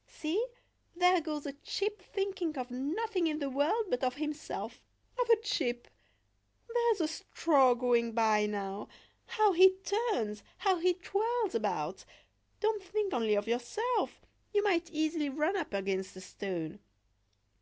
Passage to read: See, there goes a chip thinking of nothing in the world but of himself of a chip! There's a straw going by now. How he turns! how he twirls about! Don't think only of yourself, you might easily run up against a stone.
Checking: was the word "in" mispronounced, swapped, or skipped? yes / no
no